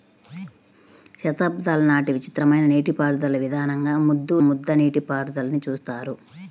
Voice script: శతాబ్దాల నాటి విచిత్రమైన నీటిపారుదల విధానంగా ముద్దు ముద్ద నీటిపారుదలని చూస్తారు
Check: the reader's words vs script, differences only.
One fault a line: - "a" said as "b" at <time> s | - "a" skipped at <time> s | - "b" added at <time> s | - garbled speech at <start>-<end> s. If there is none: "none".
none